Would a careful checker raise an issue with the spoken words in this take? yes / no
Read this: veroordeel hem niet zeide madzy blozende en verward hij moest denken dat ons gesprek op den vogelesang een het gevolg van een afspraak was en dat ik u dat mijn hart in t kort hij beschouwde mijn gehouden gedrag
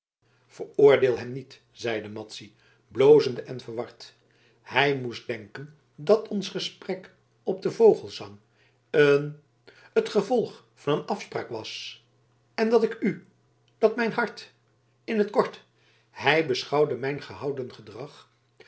no